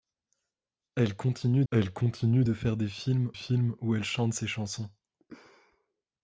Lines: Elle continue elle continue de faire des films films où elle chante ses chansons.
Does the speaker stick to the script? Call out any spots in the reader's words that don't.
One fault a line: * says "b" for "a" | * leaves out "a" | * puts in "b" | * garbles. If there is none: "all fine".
all fine